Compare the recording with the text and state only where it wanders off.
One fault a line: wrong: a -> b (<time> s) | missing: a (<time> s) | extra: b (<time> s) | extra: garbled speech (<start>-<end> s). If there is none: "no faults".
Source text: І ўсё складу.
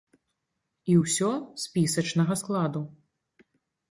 extra: спісачнага (1.6 s)